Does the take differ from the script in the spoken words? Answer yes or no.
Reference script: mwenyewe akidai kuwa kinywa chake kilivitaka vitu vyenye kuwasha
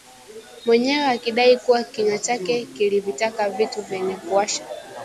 no